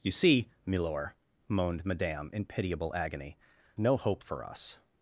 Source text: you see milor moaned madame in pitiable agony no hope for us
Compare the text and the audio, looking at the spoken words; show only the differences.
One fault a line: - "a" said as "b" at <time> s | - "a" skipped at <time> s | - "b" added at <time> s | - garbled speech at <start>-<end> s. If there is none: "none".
none